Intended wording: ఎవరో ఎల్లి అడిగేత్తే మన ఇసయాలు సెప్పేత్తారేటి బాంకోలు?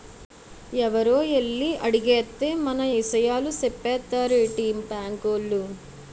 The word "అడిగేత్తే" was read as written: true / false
true